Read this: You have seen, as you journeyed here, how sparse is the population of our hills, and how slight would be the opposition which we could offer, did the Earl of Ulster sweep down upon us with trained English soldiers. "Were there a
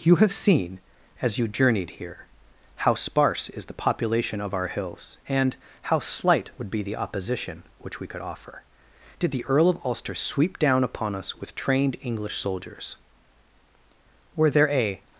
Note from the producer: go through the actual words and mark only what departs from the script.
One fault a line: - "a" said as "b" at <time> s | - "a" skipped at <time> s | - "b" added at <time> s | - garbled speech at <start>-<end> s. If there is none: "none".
none